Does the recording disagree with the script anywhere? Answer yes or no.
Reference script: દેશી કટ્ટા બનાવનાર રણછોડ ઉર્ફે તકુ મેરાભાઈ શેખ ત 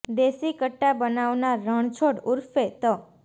yes